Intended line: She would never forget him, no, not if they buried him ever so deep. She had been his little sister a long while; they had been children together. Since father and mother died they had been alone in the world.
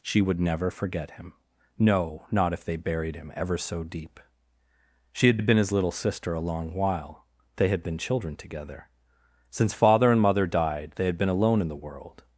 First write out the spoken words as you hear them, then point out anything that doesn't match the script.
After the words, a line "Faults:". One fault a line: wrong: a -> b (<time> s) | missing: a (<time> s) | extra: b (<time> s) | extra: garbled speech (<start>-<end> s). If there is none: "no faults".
She would never forget him, no, not if they buried him ever so deep. She had had been his little sister a long while; they had been children together. Since father and mother died they had been alone in the world.
Faults:
extra: had (5.4 s)